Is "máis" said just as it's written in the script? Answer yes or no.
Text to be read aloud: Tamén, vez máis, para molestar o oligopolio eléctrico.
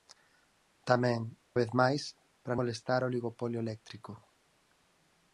yes